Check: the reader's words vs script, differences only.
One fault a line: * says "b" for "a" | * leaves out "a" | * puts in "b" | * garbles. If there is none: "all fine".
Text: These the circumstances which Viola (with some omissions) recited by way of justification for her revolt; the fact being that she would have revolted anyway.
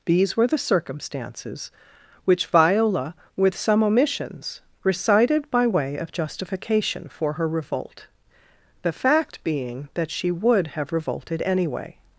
* puts in "were"